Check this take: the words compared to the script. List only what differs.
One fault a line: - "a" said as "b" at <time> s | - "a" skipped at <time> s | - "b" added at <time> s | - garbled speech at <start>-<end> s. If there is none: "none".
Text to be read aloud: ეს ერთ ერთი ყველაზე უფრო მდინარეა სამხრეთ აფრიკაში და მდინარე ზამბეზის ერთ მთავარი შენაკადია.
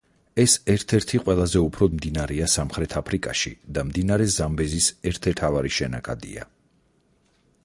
none